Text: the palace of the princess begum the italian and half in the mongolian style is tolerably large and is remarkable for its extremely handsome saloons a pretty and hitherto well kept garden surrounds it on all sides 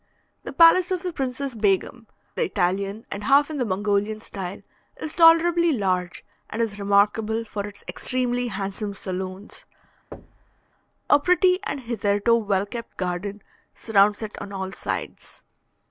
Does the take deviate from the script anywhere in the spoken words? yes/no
no